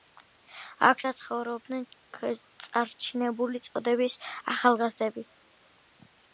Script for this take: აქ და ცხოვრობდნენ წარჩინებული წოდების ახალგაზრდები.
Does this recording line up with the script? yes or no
yes